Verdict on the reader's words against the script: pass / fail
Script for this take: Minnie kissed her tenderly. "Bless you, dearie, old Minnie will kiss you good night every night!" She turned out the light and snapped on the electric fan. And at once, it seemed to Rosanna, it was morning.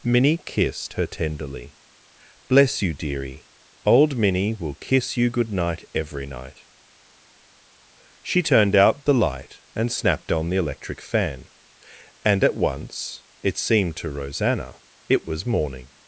pass